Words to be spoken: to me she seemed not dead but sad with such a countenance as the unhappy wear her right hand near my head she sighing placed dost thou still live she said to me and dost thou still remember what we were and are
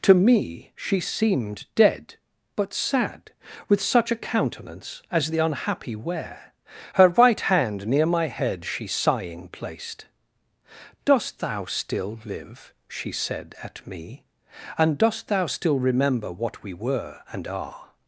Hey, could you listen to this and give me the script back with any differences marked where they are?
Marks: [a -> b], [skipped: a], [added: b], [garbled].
to me she seemed [skipped: not] dead but sad with such a countenance as the unhappy wear her right hand near my head she sighing placed dost thou still live she said [to -> at] me and dost thou still remember what we were and are